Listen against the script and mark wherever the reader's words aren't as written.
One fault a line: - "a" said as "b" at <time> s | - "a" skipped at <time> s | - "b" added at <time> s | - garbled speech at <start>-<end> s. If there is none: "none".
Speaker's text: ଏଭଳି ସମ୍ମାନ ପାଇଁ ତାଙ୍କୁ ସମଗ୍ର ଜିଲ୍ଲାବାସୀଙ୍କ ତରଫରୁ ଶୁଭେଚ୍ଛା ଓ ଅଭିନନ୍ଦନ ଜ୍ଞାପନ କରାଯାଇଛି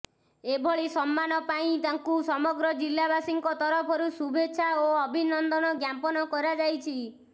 none